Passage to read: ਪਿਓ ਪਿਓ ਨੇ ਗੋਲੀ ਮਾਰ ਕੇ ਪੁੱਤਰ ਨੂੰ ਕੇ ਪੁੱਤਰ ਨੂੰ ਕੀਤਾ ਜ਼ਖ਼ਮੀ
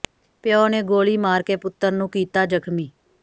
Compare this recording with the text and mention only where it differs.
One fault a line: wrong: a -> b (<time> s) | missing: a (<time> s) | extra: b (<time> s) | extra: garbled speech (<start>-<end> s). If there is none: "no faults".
missing: ਪਿਓ (0.7 s)
missing: ਕੇ ਪੁੱਤਰ ਨੂੰ (2.1 s)